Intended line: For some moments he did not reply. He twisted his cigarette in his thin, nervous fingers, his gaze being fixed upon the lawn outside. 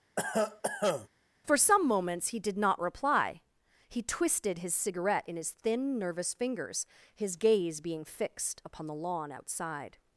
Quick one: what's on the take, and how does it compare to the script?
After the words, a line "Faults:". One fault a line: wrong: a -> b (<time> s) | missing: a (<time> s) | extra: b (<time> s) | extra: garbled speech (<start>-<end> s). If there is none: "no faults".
For some moments he did not reply. He twisted his cigarette in his thin, nervous fingers, his gaze being fixed upon the lawn outside.
Faults:
no faults